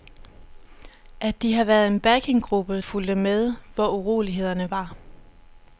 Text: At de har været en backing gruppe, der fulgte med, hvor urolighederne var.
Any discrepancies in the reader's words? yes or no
yes